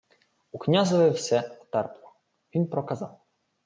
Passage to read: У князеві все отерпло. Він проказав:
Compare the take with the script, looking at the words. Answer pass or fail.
pass